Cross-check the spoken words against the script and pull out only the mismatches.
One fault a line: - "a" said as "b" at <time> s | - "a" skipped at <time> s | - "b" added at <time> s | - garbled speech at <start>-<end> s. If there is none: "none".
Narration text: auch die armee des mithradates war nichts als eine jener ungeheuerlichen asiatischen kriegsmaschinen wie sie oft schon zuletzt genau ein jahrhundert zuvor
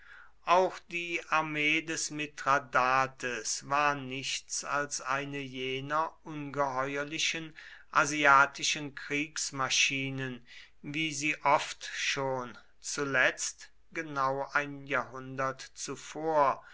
none